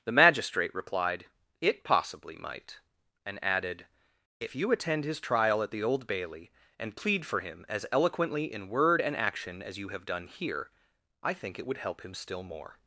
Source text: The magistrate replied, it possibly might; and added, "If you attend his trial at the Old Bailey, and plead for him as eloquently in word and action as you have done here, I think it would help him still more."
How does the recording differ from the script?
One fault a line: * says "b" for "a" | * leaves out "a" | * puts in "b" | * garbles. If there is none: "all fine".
all fine